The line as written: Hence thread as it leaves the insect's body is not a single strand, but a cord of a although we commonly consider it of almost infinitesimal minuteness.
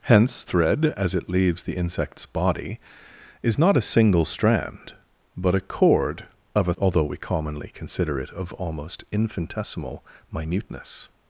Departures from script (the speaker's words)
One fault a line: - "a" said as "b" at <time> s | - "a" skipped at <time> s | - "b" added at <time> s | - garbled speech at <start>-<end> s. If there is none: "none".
none